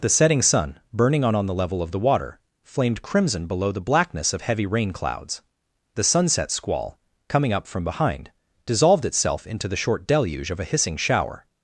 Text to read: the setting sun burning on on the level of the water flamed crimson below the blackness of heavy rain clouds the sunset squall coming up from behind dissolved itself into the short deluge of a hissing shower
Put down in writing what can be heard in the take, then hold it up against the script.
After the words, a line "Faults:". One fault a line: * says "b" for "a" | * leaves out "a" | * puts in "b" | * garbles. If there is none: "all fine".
the setting sun burning on on the level of the water flamed crimson below the blackness of heavy rain clouds the sunset squall coming up from behind dissolved itself into the short deluge of a hissing shower
Faults:
all fine